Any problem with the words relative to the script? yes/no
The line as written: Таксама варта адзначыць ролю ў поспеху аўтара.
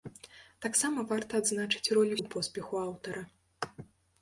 no